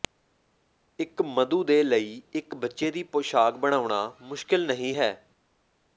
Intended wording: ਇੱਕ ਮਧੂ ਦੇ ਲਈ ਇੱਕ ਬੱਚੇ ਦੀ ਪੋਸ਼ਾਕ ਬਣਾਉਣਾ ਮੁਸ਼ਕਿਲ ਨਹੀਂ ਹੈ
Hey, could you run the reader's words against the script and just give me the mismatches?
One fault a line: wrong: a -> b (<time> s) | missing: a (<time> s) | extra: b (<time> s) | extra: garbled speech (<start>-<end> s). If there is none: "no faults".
no faults